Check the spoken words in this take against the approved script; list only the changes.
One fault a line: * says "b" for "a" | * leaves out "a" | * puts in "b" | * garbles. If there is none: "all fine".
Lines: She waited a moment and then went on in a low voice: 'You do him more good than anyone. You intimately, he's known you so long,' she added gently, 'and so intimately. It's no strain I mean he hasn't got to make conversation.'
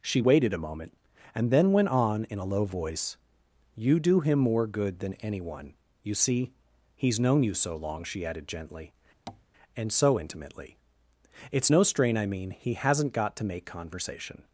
* says "see" for "intimately"